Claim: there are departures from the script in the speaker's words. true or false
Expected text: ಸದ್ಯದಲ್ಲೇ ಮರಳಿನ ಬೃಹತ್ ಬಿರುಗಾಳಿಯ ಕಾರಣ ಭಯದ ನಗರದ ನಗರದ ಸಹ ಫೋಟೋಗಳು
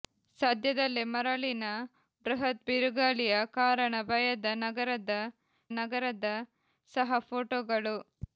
false